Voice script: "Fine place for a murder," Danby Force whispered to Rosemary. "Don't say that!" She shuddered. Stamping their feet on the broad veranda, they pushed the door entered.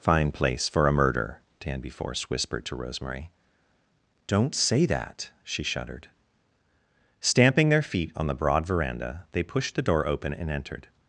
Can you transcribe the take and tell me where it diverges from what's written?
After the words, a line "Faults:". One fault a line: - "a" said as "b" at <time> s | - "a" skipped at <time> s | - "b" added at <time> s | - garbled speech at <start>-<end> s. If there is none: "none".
"Fine place for a murder," Danby Force whispered to Rosemary. "Don't say that!" She shuddered. Stamping their feet on the broad veranda, they pushed the door open and entered.
Faults:
- "open and" added at 10.1 s